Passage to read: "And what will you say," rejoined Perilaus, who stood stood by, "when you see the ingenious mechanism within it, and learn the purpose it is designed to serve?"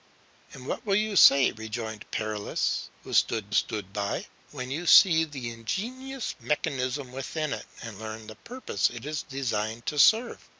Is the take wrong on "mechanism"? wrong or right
right